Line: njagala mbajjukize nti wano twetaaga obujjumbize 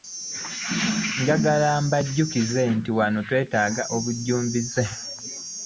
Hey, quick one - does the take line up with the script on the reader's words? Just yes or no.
yes